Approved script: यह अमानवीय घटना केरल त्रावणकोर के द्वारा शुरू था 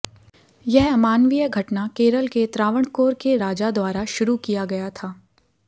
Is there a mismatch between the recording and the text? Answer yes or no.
yes